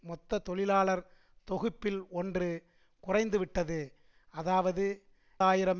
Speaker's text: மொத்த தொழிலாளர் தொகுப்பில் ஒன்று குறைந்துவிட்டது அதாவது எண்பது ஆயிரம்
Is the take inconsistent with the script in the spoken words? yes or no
yes